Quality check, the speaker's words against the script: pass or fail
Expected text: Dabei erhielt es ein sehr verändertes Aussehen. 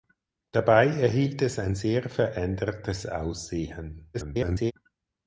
fail